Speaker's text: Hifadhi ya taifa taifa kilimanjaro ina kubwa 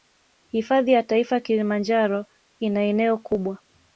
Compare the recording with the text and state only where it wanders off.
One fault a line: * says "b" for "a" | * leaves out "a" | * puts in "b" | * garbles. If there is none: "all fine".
* leaves out "taifa"
* puts in "eneo"